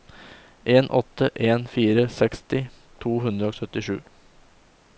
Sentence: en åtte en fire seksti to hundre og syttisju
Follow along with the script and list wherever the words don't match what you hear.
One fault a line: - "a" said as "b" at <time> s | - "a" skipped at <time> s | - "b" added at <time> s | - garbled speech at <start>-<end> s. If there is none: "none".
none